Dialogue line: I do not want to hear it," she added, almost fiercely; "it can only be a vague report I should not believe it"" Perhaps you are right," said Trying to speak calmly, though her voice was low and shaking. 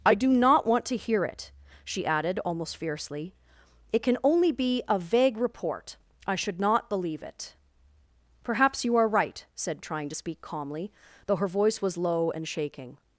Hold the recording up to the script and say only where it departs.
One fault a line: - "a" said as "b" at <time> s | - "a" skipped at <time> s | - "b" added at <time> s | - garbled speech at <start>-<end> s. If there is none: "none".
none